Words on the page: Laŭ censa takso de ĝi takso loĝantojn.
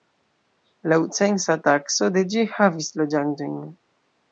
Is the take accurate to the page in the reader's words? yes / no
no